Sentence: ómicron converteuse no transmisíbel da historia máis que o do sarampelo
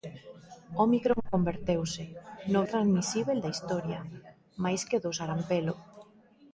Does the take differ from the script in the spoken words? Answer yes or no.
no